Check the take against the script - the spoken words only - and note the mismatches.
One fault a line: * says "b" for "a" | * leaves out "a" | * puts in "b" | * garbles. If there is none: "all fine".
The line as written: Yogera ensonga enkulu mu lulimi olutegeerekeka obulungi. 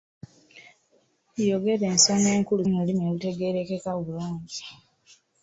all fine